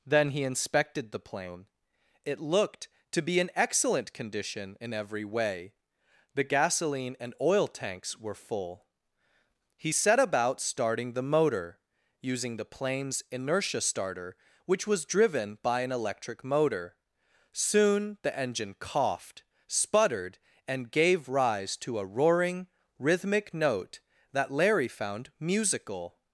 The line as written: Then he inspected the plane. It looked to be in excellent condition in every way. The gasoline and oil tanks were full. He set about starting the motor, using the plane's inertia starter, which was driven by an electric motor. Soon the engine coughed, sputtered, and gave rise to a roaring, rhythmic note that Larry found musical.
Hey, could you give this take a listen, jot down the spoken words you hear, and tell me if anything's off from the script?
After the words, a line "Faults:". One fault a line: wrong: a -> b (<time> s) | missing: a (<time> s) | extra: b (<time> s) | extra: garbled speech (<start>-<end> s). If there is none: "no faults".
Then he inspected the plane. It looked to be in excellent condition in every way. The gasoline and oil tanks were full. He set about starting the motor, using the plane's inertia starter, which was driven by an electric motor. Soon the engine coughed, sputtered, and gave rise to a roaring, rhythmic note that Larry found musical.
Faults:
no faults